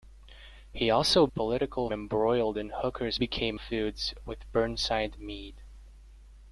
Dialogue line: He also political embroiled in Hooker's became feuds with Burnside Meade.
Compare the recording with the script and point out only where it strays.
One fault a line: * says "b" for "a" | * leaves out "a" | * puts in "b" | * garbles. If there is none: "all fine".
all fine